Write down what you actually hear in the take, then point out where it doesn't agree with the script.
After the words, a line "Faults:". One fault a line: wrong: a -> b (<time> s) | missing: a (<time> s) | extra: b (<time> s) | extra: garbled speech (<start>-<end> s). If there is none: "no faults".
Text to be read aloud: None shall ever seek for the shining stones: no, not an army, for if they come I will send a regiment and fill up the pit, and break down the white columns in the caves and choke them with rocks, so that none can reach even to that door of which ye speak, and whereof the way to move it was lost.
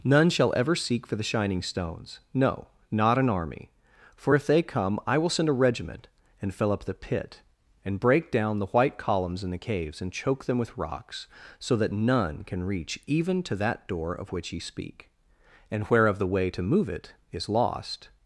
None shall ever seek for the shining stones: no, not an army, for if they come I will send a regiment and fill up the pit, and break down the white columns in the caves and choke them with rocks, so that none can reach even to that door of which ye speak, and whereof the way to move it is lost.
Faults:
wrong: was -> is (17.3 s)